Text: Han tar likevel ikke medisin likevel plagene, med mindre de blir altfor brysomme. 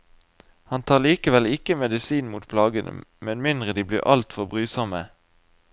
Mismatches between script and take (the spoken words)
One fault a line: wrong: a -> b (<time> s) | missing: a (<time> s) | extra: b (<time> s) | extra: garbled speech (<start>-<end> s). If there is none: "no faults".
wrong: likevel -> mot (2.3 s)